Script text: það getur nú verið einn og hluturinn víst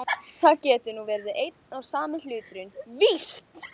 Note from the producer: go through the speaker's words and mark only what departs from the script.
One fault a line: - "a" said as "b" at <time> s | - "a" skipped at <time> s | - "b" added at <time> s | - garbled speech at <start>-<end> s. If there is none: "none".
- "sami" added at 1.9 s